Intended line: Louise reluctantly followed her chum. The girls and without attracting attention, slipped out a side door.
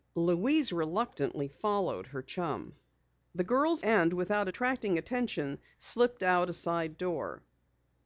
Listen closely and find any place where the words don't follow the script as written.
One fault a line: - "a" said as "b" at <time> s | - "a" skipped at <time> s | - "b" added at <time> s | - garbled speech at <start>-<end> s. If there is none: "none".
none